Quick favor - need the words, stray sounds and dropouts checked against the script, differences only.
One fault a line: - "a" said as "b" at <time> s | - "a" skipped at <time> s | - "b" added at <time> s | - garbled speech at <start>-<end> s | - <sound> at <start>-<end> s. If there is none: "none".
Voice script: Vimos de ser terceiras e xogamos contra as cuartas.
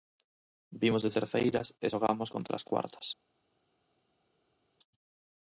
- "ser" skipped at 1.1 s